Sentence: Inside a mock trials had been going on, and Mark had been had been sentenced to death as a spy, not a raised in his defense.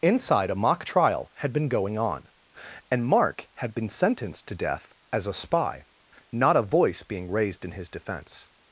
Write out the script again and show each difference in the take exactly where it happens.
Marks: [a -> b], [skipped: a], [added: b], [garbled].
Inside a mock [trials -> trial] had been going on, and Mark had been [skipped: had been] sentenced to death as a spy, not a [added: voice being] raised in his defense.